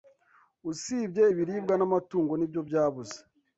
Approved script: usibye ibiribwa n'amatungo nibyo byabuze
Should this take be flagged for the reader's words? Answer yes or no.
no